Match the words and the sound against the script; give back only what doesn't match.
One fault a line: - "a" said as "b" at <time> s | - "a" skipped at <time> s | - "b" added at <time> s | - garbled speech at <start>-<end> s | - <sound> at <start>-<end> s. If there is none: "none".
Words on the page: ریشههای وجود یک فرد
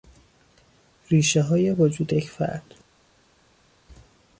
none